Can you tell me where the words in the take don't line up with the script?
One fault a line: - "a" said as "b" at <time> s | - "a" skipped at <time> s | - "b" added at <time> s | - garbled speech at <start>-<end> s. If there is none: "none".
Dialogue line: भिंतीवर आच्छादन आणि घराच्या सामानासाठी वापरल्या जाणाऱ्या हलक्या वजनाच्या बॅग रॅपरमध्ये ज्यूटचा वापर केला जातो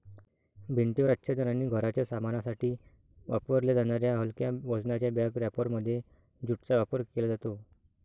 none